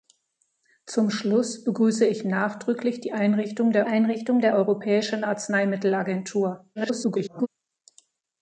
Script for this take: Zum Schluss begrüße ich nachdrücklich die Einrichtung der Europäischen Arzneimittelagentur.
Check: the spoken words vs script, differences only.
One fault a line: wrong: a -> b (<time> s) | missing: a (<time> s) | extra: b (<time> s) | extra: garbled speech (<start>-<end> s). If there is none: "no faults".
extra: Einrichtung der (3.9 s)
extra: garbled speech (6.8-7.5 s)